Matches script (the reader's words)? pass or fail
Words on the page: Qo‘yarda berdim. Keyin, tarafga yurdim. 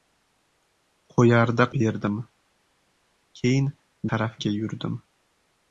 pass